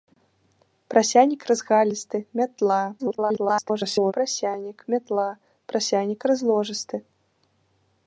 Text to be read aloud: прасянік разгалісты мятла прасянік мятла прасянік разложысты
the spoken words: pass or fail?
fail